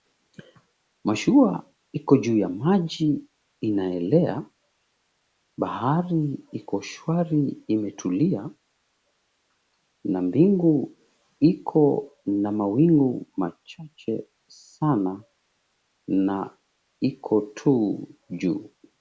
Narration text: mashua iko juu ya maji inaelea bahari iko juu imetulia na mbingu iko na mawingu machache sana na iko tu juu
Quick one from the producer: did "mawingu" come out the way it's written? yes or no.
yes